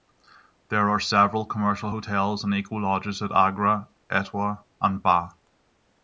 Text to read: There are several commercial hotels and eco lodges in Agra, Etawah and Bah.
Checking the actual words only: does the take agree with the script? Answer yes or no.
no